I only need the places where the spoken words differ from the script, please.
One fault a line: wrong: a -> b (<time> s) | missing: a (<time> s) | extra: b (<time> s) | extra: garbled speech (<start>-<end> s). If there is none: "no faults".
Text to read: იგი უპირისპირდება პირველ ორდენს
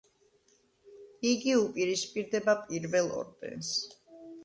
no faults